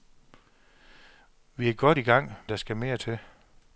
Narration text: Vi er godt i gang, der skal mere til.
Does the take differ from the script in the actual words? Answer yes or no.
no